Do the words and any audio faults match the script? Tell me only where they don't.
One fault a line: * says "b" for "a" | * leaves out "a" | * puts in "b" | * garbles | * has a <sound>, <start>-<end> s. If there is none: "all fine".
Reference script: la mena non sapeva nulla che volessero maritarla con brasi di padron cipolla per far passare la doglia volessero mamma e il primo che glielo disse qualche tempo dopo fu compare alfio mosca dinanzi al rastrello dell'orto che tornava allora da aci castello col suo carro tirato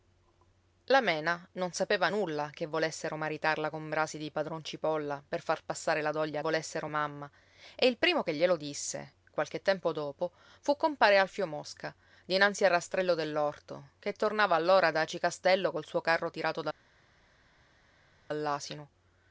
all fine